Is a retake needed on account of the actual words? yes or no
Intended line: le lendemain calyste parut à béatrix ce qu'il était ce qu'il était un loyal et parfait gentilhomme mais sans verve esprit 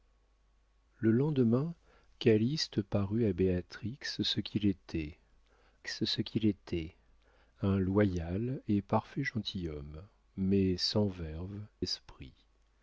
no